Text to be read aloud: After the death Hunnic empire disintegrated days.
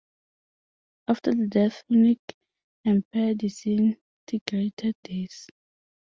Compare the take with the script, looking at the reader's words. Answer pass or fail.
pass